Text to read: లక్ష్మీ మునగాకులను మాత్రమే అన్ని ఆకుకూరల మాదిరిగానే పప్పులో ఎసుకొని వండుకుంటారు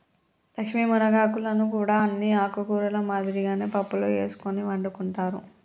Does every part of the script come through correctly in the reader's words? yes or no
no